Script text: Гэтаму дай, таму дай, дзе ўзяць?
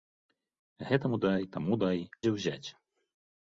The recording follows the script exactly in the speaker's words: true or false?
true